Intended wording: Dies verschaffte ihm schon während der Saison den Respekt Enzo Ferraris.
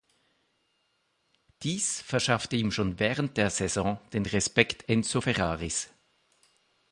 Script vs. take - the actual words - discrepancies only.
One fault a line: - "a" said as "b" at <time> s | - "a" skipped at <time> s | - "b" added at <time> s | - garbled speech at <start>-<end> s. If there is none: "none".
none